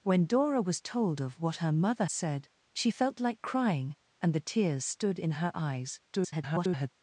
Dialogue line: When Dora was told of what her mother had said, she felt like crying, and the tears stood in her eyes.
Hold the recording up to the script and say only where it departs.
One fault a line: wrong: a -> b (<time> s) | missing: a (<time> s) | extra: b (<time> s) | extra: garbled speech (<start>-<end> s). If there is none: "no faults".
missing: had (2.0 s)
extra: garbled speech (6.1-6.9 s)